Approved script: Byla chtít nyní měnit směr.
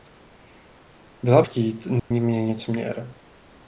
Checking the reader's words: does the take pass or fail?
pass